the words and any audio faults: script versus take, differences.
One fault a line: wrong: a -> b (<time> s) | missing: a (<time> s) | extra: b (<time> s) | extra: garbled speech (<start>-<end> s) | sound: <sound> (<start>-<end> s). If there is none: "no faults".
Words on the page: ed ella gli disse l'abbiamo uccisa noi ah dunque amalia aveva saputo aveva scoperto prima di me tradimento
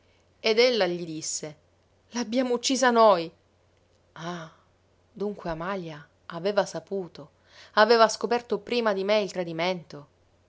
extra: il (9.2 s)